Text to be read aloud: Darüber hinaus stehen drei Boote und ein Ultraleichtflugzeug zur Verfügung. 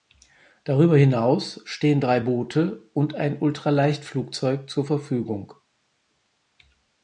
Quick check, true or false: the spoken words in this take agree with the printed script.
true